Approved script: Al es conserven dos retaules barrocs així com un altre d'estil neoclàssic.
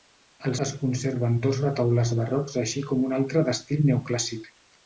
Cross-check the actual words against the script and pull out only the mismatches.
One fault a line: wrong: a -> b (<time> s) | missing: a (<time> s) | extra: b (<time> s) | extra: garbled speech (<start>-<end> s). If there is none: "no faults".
no faults